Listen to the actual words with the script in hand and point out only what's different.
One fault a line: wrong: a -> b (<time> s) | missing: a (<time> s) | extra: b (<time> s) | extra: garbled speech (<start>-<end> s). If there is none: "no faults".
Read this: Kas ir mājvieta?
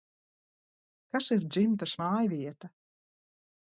extra: dzimtas (1.5 s)